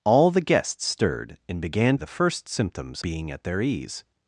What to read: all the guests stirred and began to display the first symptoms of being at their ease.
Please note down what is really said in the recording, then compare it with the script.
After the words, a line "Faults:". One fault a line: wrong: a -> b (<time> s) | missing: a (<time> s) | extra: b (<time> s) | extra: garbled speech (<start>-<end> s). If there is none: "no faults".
all the guests stirred and began the first symptoms being at their ease.
Faults:
missing: to display (1.9 s)
missing: of (3.0 s)